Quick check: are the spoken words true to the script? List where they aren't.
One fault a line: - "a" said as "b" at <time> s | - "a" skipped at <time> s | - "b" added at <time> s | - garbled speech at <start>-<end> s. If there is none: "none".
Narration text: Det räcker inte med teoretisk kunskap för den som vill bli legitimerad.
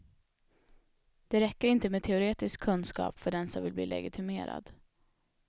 none